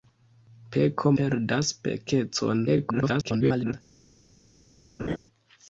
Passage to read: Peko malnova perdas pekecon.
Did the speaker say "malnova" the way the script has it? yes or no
no